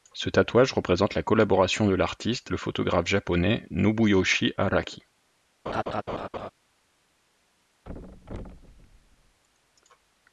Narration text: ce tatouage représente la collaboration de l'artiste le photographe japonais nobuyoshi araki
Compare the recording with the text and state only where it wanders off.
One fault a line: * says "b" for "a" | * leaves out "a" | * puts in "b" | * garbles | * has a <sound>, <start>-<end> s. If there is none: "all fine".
* has a laugh, 5.7-6.5 s
* has a thud, 7.8-9.4 s